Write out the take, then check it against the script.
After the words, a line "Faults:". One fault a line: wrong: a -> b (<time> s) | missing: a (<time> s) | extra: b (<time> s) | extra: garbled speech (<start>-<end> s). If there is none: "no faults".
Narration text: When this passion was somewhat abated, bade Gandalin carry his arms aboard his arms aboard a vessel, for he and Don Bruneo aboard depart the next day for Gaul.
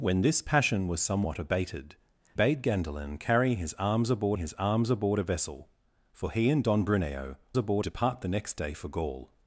When this passion was somewhat abated, bade Gandalin carry his arms aboard his arms aboard a vessel, for he and Don Bruneo aboard depart the next day for Gaul.
Faults:
no faults